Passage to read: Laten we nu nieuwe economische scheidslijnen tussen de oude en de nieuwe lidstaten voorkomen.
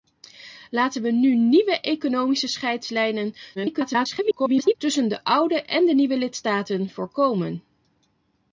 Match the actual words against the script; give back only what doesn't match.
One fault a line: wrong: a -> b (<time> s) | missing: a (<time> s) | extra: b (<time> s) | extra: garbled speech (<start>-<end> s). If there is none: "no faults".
extra: garbled speech (3.6-4.7 s)